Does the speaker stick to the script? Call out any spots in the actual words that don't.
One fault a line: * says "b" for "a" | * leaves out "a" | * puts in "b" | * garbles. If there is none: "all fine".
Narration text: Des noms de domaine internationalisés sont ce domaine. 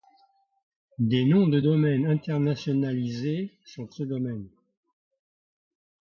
all fine